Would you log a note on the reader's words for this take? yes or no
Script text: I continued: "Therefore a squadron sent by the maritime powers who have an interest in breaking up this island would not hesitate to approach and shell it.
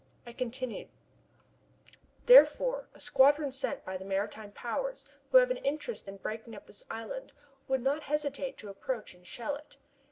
no